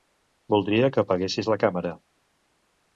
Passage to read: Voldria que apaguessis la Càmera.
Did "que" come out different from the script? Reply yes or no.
no